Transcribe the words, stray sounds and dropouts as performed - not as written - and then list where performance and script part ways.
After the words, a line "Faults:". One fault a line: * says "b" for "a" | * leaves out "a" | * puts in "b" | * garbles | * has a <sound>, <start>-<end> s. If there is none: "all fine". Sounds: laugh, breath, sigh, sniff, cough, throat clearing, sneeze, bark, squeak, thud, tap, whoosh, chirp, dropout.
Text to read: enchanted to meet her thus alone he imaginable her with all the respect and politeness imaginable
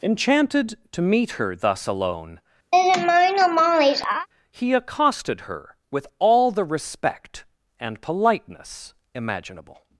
enchanted to meet her thus alone he accosted her with all the respect and politeness imaginable
Faults:
* has a laugh, 2.7-4.3 s
* says "accosted" for "imaginable"